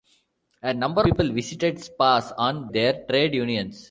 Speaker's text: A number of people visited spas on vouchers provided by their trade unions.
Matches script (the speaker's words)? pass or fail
fail